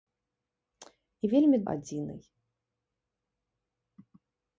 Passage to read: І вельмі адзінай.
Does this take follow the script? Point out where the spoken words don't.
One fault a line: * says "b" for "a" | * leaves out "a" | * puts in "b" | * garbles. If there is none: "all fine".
all fine